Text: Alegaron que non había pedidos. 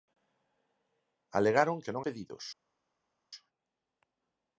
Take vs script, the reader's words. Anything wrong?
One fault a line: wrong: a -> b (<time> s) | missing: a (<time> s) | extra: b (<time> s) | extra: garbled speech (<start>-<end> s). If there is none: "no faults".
missing: había (2.0 s)